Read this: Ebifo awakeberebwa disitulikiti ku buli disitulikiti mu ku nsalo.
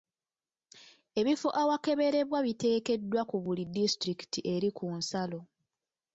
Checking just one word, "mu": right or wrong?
wrong